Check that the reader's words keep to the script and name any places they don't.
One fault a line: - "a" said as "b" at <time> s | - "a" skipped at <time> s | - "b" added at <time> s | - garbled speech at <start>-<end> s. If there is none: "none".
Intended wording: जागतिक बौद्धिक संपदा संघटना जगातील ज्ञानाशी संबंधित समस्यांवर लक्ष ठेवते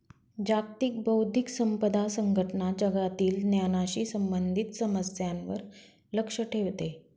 none